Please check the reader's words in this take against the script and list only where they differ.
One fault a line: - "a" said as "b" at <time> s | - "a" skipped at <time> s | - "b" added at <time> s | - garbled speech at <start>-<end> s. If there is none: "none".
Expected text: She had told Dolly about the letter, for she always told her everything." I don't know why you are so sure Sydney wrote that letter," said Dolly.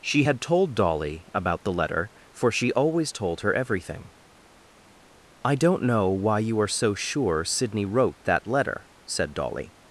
none